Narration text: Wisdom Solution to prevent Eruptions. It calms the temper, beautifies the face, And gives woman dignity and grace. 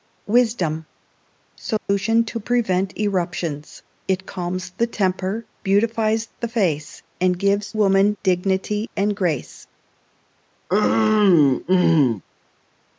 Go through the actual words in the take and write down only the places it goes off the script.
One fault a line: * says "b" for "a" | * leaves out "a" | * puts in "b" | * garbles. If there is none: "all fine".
all fine